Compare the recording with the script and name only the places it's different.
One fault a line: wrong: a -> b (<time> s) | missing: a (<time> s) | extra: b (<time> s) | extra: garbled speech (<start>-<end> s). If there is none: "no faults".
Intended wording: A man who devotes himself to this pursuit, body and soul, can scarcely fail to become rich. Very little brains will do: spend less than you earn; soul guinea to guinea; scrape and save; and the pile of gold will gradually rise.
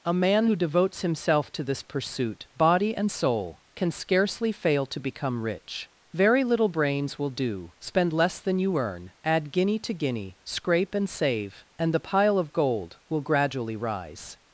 wrong: soul -> add (9.2 s)